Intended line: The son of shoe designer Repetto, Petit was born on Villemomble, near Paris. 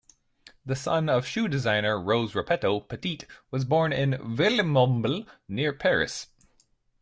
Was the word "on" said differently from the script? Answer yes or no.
yes